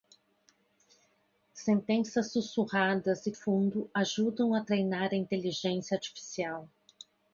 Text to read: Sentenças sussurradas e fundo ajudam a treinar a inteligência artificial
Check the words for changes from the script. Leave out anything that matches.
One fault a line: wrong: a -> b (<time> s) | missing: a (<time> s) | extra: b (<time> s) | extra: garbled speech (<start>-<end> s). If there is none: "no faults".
no faults